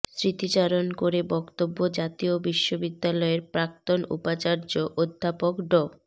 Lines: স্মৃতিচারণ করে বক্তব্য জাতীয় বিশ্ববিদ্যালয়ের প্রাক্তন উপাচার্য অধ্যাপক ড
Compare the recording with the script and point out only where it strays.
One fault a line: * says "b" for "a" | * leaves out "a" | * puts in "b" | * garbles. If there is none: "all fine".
all fine